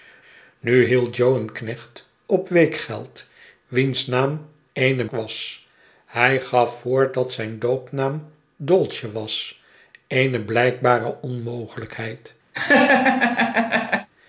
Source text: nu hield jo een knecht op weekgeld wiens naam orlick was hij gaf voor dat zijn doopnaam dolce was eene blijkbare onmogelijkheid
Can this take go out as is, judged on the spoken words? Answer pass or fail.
fail